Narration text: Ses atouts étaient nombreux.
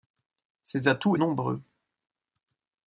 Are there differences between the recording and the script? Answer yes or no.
yes